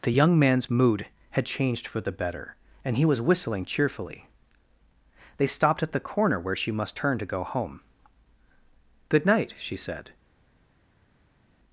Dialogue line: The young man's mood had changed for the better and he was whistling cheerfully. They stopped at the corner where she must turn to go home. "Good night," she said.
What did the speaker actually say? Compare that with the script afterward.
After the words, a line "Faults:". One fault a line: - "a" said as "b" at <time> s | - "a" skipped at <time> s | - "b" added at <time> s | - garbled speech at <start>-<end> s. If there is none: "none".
The young man's mood had changed for the better and he was whistling cheerfully. They stopped at the corner where she must turn to go home. "Good night," she said.
Faults:
none